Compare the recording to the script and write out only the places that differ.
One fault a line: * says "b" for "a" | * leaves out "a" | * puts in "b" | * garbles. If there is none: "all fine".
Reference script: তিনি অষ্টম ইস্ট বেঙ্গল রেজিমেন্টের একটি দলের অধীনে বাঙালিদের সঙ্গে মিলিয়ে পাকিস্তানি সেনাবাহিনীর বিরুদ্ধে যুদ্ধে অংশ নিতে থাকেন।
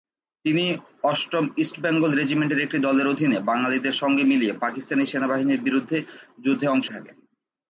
* leaves out "নিতে"